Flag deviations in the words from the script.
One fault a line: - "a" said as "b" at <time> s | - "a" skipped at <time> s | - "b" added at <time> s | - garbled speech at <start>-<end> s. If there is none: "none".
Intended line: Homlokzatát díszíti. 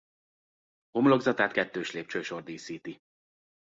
- "kettős lépcsősor" added at 1.5 s